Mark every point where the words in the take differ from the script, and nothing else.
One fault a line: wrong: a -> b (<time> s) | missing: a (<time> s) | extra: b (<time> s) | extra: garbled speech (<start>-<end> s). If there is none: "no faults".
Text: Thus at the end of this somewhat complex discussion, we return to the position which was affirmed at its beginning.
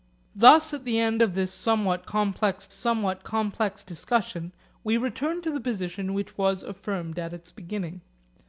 extra: somewhat complex (2.7 s)